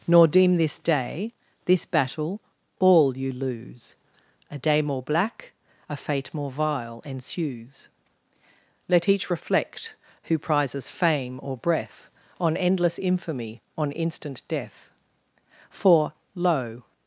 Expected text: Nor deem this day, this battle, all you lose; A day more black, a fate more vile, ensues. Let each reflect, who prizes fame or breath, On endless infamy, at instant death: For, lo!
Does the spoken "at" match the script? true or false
false